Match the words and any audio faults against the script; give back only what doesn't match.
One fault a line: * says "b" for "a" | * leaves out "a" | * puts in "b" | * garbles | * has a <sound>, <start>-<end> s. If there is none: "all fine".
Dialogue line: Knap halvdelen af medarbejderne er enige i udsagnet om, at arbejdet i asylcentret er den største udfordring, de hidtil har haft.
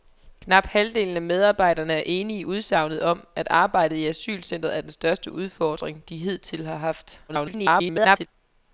* garbles